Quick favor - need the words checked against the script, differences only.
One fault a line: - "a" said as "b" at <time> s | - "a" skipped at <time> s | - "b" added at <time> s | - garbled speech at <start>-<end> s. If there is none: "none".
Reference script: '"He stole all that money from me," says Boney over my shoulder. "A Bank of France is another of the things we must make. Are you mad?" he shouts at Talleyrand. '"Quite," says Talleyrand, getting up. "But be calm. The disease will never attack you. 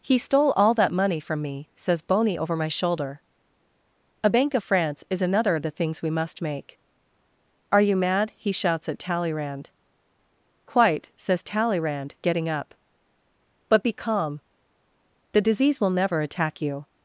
none